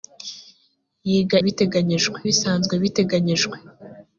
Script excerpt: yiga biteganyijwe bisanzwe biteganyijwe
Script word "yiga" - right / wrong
right